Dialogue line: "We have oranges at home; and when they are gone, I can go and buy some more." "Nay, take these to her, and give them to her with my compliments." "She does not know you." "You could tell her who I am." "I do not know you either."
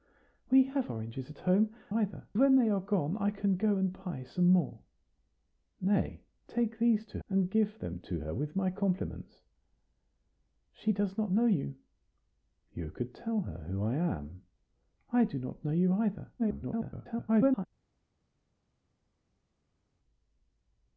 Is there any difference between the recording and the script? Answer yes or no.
yes